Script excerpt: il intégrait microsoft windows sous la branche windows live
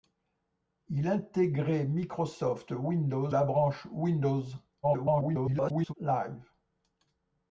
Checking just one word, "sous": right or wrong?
wrong